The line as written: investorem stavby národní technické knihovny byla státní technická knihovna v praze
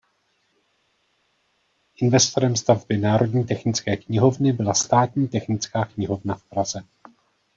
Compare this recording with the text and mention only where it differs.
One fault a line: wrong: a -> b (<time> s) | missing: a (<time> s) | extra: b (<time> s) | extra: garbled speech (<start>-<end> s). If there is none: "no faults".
no faults